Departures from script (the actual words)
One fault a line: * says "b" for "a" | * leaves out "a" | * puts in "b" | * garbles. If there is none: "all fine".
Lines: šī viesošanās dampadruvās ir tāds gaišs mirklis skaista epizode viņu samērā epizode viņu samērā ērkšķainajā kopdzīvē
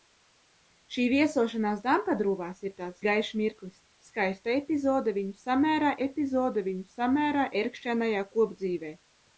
all fine